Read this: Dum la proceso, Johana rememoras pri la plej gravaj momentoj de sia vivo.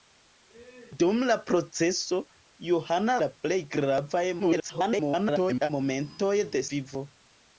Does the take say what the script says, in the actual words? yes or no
no